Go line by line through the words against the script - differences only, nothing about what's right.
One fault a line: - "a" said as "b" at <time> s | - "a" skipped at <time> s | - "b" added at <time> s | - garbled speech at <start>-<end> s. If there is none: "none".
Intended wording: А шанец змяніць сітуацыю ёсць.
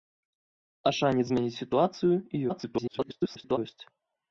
- garbled speech at 2.5-3.6 s